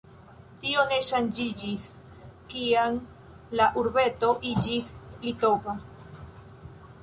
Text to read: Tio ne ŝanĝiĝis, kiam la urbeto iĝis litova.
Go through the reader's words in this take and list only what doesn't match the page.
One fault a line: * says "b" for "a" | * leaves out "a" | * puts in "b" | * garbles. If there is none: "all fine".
all fine